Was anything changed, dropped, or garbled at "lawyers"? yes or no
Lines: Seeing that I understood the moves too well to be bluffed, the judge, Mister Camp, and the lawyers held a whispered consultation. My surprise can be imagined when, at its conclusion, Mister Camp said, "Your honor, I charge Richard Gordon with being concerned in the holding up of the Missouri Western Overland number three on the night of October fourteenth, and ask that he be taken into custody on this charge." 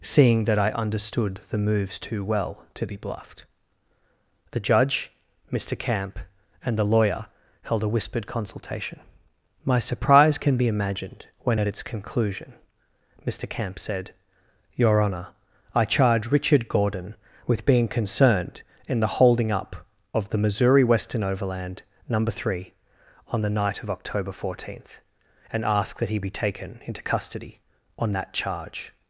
yes